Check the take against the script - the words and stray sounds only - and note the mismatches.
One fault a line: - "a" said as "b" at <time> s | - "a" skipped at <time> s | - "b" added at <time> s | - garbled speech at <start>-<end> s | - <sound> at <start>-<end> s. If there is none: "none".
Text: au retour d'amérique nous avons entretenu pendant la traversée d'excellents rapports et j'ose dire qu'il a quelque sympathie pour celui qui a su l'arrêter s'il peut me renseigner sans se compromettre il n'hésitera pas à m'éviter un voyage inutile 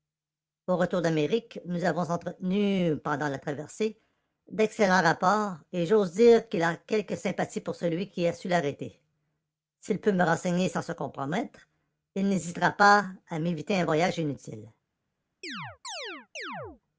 - chirp at 15.4-16.8 s